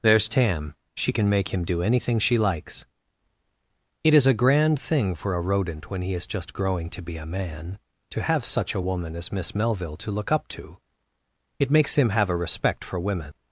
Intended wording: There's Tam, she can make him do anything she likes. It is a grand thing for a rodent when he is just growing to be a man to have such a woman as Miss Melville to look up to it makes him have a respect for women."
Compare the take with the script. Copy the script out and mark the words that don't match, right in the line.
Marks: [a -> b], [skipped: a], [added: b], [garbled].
There's Tam, she can make him do anything she likes. It is a grand thing for a rodent when he is just growing to be a man to have such a woman as Miss Melville to look up to it makes him have a respect for women."